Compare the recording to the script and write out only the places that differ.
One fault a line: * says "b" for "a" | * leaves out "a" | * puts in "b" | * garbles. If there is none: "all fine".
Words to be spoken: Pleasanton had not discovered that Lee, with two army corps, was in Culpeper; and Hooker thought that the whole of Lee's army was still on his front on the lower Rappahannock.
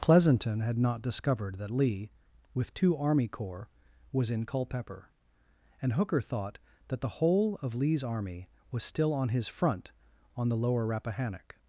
all fine